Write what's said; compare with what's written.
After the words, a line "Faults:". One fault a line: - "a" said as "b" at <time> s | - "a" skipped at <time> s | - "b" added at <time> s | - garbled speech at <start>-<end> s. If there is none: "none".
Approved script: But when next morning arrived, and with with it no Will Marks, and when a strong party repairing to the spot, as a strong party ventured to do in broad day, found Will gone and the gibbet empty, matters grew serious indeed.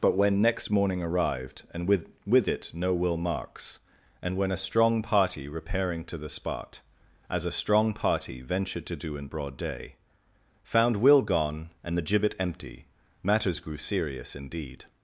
But when next morning arrived, and with with it no Will Marks, and when a strong party repairing to the spot, as a strong party ventured to do in broad day, found Will gone and the gibbet empty, matters grew serious indeed.
Faults:
none